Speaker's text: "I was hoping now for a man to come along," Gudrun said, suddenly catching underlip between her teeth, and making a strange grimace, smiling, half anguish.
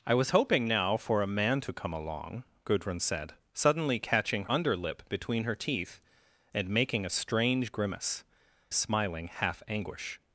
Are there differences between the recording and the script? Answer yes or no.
no